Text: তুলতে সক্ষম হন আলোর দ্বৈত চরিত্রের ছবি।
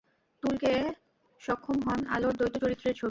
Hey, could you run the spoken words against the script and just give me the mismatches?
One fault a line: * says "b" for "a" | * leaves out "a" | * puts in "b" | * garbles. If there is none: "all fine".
all fine